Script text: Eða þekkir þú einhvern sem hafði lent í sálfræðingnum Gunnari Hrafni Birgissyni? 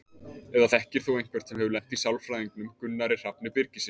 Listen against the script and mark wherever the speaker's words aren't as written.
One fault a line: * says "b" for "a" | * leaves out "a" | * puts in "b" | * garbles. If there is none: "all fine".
* says "hefur" for "hafði"